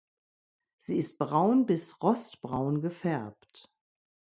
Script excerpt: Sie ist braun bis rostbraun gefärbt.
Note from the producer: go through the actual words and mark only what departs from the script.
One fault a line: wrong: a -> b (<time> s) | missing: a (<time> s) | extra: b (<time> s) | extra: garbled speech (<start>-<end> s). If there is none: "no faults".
no faults